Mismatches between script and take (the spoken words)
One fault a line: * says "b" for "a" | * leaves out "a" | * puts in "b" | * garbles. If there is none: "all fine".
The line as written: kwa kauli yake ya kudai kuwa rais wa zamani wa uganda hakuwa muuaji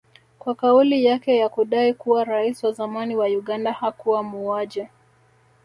all fine